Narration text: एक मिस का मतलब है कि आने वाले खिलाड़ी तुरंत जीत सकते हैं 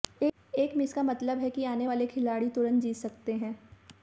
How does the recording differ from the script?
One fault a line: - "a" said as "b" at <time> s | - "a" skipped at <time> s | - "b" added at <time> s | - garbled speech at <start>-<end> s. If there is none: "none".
none